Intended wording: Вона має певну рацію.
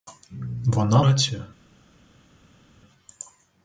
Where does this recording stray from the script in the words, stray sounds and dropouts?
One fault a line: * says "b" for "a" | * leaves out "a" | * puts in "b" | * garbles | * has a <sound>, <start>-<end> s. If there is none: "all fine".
* leaves out "має певну"